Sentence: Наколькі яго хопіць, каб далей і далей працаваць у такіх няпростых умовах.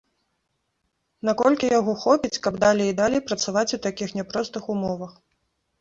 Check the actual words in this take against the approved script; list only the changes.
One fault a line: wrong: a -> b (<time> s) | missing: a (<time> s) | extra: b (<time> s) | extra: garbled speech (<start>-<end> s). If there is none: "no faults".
no faults